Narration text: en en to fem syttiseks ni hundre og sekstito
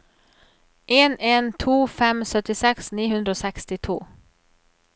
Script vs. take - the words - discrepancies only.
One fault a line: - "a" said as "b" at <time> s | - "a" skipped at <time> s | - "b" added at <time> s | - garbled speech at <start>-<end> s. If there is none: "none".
none